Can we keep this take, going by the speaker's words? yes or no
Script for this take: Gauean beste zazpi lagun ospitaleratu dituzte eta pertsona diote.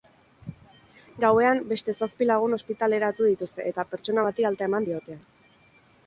no